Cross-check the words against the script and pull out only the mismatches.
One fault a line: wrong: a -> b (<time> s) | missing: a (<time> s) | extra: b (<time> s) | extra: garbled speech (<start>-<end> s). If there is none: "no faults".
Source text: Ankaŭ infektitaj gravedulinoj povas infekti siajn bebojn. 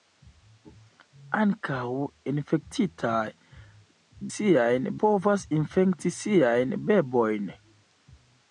wrong: gravedulinoj -> siajn (4.3 s)